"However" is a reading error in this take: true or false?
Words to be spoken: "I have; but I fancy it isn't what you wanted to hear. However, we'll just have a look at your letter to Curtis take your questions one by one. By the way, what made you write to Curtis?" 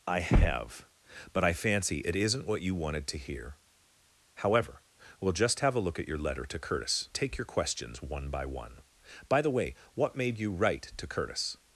false